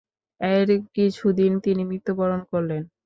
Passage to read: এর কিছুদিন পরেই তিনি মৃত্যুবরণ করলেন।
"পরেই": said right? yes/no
no